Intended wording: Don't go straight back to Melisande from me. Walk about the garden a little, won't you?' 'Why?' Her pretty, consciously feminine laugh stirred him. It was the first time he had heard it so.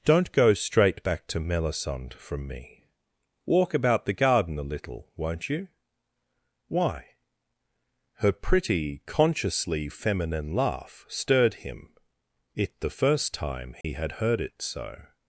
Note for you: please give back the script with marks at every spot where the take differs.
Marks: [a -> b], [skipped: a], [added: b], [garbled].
Don't go straight back to Melisande from me. Walk about the garden a little, won't you?' 'Why?' Her pretty, consciously feminine laugh stirred him. It [skipped: was] the first time he had heard it so.